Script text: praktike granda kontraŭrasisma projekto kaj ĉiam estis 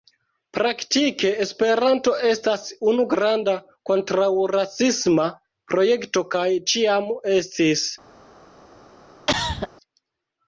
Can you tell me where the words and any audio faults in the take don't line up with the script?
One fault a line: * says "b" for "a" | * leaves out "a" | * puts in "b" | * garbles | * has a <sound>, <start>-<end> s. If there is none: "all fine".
* puts in "esperanto estas unu"
* has a cough, 9.3-9.7 s